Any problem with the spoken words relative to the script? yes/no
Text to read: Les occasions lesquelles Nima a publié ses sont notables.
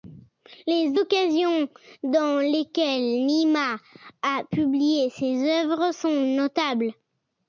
yes